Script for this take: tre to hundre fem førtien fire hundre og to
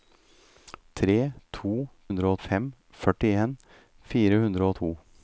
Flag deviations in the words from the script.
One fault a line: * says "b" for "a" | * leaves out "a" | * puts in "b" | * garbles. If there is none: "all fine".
all fine